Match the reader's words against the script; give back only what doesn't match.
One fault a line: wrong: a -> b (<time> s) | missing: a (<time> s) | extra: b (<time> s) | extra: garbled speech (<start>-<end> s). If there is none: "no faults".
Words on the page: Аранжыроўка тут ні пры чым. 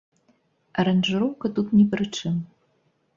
no faults